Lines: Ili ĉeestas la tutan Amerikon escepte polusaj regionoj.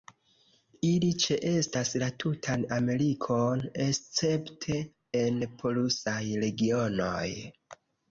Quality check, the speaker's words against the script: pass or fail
fail